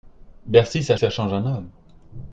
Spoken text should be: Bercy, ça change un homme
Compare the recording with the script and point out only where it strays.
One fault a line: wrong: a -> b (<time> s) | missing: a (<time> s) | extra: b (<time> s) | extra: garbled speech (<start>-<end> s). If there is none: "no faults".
extra: ça (0.9 s)